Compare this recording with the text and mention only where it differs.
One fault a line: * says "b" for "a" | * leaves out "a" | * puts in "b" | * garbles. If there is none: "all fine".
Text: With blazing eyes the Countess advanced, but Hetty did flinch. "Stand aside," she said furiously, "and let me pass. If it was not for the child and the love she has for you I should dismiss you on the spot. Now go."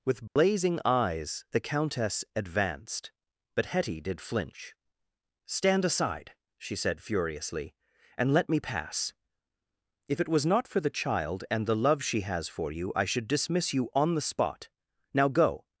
all fine